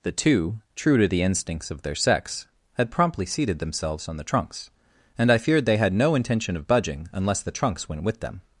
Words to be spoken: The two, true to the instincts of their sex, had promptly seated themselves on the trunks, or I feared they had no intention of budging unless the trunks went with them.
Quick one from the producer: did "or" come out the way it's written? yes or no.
no